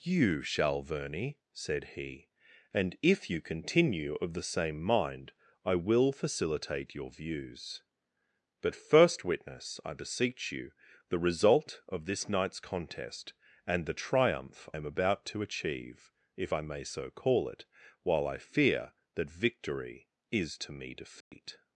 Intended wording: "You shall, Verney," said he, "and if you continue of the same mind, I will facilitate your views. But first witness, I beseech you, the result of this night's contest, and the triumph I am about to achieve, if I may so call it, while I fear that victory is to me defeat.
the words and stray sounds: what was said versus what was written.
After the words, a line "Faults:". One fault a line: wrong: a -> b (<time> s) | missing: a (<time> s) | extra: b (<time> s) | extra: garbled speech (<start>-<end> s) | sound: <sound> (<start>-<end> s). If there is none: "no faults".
"You shall, Verney," said he, "and if you continue of the same mind, I will facilitate your views. But first witness, I beseech you, the result of this night's contest, and the triumph am about to achieve, if I may so call it, while I fear that victory is to me defeat.
Faults:
missing: I (14.7 s)
sound: dropout (21.2-21.3 s)